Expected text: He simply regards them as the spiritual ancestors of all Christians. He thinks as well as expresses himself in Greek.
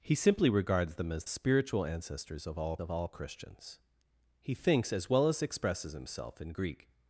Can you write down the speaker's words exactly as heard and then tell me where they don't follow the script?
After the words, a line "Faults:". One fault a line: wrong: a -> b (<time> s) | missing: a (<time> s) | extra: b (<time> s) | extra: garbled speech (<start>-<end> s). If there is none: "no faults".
He simply regards them as spiritual ancestors of all of all Christians. He thinks as well as expresses himself in Greek.
Faults:
missing: the (1.2 s)
extra: of all (2.8 s)